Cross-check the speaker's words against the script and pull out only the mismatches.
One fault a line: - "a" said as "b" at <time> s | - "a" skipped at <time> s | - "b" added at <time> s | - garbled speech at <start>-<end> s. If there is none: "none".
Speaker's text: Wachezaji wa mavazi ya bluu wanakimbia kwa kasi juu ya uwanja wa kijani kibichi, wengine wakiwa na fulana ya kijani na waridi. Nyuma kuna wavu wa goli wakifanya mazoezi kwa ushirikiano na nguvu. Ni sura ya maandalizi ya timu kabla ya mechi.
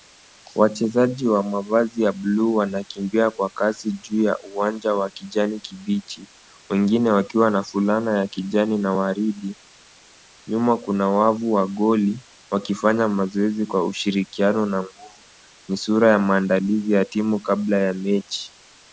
none